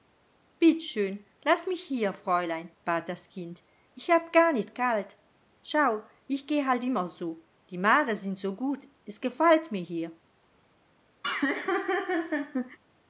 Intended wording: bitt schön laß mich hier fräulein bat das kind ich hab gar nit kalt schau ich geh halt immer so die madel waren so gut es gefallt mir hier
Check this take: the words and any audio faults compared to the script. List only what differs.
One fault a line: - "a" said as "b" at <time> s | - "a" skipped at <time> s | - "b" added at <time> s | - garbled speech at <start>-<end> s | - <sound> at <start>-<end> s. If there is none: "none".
- "waren" said as "sind" at 8.2 s
- laugh at 11.2-12.8 s